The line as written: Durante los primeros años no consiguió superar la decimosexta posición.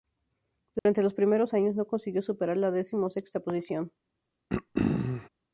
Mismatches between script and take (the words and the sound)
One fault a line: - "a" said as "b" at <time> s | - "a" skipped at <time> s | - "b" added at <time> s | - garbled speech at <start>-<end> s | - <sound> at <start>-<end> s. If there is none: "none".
- dropout at 0.8-0.9 s
- throat clearing at 4.5-5.3 s